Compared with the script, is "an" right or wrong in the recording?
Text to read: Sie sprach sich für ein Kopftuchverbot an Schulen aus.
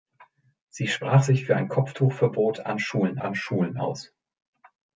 right